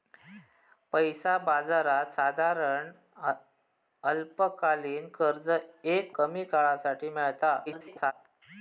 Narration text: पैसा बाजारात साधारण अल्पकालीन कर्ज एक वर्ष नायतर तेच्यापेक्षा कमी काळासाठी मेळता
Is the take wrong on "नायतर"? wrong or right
wrong